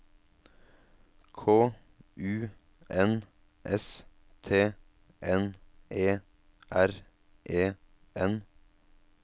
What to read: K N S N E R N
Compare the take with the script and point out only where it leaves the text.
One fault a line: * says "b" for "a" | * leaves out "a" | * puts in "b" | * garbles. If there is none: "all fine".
* puts in "U"
* puts in "T"
* puts in "E"